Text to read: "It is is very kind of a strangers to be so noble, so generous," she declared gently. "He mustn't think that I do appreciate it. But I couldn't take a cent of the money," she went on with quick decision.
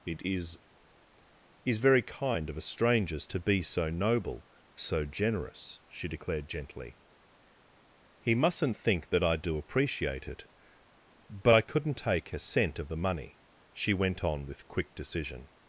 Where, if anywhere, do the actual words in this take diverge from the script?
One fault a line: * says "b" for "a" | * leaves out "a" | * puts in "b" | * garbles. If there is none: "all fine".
all fine